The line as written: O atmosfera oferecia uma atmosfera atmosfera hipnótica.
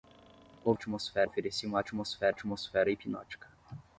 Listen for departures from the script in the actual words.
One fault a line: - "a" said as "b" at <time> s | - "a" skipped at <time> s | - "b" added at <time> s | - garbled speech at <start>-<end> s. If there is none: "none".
none